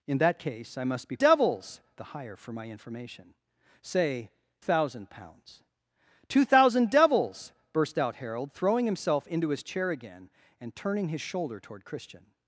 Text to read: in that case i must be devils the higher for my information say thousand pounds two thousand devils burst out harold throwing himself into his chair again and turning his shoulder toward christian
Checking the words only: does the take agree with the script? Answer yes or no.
yes